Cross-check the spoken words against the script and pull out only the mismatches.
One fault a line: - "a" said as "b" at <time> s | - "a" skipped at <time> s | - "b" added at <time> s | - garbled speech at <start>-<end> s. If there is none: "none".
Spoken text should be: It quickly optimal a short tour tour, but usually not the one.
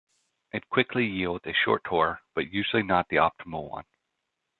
- "optimal" said as "yields" at 1.1 s
- "tour" skipped at 2.2 s
- "optimal" added at 3.2 s